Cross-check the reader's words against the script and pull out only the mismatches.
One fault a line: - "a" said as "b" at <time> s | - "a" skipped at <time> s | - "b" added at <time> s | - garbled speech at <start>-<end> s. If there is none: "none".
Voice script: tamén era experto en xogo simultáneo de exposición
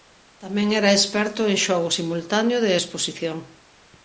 none